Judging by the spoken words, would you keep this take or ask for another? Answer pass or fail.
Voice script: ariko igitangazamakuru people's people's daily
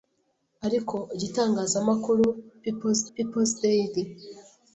pass